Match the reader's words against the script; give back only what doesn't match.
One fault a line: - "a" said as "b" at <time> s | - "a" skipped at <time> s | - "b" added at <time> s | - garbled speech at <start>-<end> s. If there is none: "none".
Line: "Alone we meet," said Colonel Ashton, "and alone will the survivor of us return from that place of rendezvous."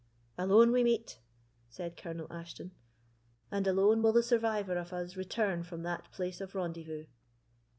none